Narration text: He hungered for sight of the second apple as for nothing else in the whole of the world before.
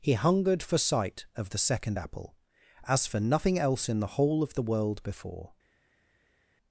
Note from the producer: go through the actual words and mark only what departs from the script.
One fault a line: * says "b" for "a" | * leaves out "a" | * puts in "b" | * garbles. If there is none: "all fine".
all fine